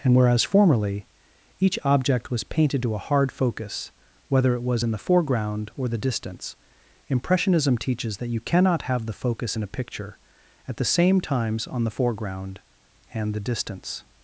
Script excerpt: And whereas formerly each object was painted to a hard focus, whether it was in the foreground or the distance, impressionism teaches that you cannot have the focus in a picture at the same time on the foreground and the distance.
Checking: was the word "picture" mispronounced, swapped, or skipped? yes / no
no